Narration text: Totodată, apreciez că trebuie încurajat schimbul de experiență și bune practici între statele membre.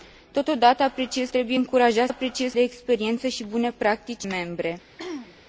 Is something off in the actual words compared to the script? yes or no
yes